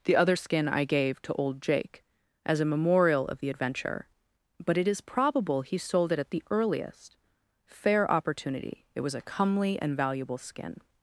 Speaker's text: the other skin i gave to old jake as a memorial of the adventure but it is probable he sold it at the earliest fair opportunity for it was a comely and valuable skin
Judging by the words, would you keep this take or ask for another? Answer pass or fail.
fail